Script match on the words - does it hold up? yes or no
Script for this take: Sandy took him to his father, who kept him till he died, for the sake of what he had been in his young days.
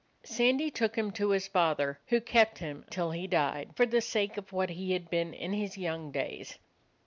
yes